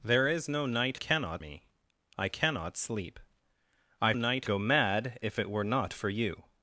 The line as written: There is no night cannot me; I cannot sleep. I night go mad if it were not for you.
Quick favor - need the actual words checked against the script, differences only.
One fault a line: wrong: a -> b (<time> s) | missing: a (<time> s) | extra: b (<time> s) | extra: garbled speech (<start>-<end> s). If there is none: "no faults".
no faults